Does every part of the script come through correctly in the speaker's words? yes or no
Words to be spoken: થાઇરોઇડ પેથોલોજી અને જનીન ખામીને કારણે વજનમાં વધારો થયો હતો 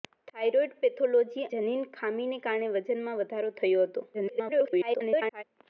no